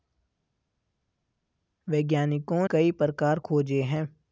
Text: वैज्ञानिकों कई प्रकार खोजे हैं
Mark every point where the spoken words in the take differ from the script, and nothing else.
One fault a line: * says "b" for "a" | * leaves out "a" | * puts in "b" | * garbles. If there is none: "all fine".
all fine